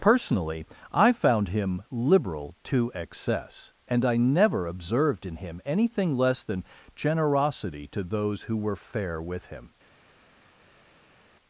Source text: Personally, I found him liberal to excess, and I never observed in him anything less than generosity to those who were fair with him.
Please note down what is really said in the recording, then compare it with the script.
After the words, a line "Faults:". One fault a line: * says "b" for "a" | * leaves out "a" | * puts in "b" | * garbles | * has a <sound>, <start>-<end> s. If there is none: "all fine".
Personally, I found him liberal to excess, and I never observed in him anything less than generosity to those who were fair with him.
Faults:
all fine